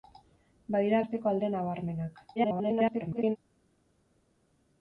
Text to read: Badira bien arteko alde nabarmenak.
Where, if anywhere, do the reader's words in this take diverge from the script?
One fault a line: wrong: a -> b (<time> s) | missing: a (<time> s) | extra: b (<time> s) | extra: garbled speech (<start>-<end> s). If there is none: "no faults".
missing: bien (1.0 s)
extra: garbled speech (2.4-3.4 s)